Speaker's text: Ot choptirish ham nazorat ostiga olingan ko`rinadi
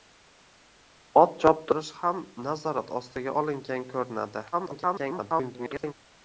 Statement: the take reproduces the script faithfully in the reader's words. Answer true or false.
false